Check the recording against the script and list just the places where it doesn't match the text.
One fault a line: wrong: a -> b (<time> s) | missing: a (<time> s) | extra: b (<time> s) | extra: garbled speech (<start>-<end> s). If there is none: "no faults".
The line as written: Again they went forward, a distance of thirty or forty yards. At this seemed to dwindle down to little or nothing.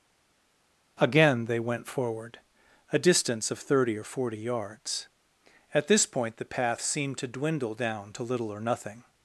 extra: point the path (6.1 s)